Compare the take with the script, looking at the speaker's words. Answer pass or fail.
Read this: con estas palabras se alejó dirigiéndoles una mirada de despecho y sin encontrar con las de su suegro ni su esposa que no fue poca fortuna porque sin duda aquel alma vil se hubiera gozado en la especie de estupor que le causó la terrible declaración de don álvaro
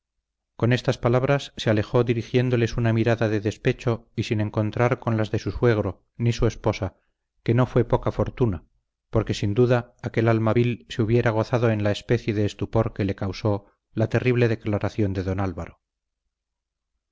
pass